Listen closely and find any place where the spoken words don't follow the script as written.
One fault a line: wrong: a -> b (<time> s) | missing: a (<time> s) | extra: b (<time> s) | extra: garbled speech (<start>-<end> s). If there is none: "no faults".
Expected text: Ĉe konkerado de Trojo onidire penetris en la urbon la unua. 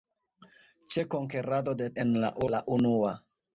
missing: Trojo onidire penetris (1.9 s)
missing: urbon (2.3 s)